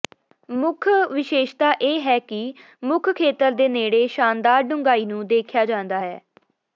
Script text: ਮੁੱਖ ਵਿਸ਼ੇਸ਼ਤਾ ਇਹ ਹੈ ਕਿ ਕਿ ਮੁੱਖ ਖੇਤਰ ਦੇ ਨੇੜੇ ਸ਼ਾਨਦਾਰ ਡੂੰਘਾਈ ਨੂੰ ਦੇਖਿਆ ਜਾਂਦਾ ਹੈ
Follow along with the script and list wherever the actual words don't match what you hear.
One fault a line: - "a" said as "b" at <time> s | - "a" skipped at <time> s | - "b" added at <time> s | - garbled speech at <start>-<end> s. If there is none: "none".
- "ਕਿ" skipped at 2.5 s